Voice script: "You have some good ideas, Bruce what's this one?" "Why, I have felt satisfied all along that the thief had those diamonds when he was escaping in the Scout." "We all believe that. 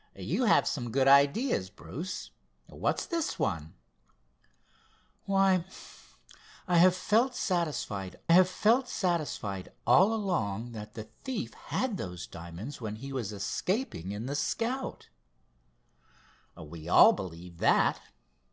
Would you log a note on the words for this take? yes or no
yes